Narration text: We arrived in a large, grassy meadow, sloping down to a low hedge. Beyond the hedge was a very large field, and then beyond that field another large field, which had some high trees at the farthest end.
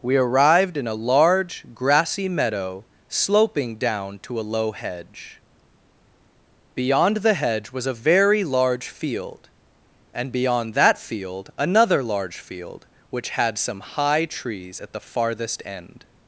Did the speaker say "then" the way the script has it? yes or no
no